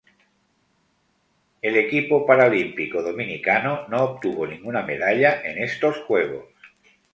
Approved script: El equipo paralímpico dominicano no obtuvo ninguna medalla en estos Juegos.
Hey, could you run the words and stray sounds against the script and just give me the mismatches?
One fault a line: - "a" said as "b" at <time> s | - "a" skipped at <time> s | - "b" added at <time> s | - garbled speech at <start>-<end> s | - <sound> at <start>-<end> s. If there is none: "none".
none